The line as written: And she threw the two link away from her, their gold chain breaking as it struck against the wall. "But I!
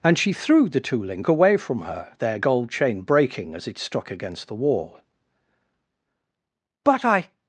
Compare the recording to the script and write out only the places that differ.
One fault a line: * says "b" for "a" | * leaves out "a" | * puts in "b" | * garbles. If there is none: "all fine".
all fine